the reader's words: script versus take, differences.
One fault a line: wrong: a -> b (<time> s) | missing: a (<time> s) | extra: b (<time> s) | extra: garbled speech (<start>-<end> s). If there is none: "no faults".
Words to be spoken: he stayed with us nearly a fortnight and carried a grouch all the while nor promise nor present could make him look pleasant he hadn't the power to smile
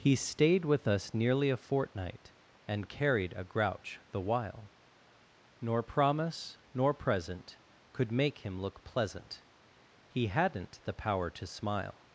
missing: all (4.0 s)